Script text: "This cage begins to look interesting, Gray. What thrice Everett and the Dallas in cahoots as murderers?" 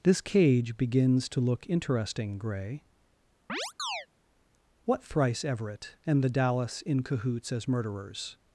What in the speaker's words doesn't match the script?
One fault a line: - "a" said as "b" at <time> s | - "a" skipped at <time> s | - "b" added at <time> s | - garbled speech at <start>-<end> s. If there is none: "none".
none